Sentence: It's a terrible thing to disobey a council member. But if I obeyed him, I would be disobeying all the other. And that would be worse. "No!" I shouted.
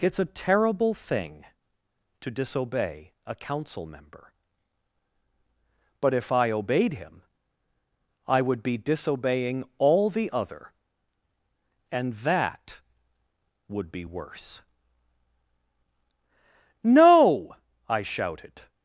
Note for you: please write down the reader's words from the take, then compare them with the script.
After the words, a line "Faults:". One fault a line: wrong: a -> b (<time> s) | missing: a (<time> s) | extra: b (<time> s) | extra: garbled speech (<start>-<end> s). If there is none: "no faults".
It's a terrible thing to disobey a council member. But if I obeyed him, I would be disobeying all the other. And that would be worse. "No!" I shouted.
Faults:
no faults